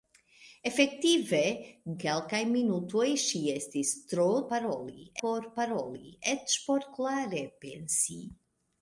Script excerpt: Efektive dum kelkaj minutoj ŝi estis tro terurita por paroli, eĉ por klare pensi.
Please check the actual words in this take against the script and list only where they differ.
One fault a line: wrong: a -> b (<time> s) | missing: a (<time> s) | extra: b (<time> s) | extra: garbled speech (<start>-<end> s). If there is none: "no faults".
missing: dum (1.4 s)
wrong: terurita -> paroli (4.5 s)